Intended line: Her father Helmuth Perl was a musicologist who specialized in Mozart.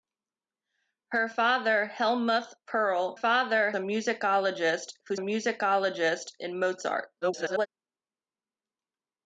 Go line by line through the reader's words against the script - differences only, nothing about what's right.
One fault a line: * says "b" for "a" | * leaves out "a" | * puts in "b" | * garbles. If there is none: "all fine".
* says "father" for "was"
* says "musicologist" for "specialized"
* garbles